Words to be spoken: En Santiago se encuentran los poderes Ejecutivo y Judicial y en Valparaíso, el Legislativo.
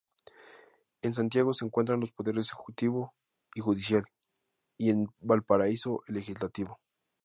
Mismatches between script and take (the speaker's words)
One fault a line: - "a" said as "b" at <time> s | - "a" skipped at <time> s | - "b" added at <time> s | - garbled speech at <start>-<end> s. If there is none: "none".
none